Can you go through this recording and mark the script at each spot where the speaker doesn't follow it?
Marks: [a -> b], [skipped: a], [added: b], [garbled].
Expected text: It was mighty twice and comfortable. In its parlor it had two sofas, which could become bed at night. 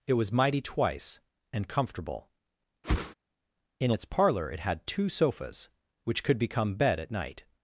It was mighty twice and comfortable. In its parlor it had two sofas, which could become bed at night.